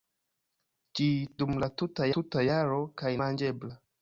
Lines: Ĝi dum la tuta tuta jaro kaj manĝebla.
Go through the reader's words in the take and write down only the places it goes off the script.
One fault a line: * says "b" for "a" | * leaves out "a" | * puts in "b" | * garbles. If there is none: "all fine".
all fine